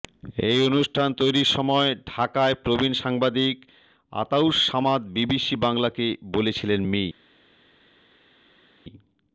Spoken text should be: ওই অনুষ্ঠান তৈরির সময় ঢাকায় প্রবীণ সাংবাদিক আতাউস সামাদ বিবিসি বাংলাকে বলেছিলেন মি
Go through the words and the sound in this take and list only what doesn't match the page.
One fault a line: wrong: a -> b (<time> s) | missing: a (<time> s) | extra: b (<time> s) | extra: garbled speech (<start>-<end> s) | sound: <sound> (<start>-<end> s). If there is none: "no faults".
wrong: ওই -> এই (0.5 s)